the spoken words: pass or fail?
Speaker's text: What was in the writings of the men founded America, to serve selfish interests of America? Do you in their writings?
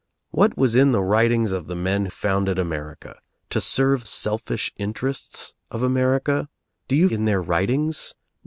pass